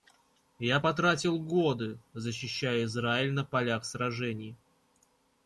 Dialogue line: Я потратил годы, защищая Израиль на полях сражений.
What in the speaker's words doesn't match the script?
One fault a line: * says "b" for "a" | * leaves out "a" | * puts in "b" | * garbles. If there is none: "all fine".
all fine